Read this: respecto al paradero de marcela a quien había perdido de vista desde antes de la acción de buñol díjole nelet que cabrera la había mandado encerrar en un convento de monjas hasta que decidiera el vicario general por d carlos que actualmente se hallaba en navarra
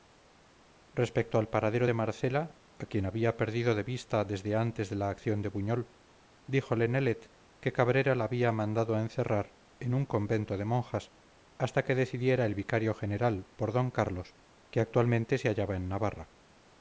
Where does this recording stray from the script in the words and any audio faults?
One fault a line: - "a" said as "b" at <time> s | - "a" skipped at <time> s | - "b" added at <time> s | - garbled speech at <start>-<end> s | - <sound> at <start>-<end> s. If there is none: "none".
none